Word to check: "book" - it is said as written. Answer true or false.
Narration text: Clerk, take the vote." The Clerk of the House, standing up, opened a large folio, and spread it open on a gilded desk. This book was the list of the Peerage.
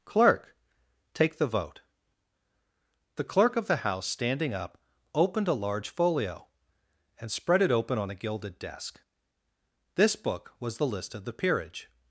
true